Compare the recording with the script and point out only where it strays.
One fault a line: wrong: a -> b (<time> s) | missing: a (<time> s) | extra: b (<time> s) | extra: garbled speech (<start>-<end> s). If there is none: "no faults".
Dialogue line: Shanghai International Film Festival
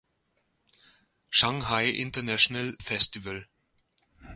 missing: Film (2.7 s)